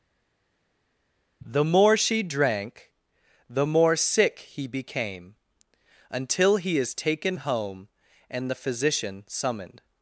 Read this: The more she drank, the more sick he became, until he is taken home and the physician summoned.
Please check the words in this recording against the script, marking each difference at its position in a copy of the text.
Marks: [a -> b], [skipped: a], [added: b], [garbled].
The more she drank, the more sick he became, until he is taken home and the physician summoned.